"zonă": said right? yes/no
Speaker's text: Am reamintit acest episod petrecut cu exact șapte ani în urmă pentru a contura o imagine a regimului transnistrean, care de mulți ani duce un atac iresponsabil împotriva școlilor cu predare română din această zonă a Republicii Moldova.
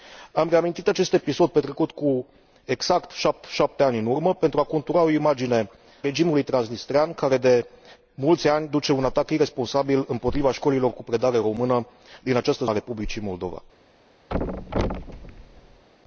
no